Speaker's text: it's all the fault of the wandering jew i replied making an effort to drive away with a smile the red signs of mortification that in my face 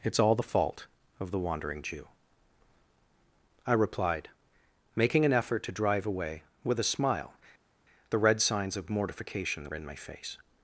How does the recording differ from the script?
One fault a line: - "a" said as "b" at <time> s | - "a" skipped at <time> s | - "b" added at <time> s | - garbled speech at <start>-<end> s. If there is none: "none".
none